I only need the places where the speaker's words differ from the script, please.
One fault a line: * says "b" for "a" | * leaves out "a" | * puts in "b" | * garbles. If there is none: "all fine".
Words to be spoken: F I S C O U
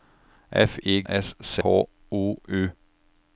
all fine